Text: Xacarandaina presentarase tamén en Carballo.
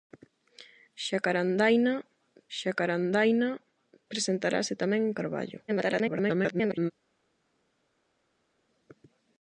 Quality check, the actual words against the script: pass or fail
fail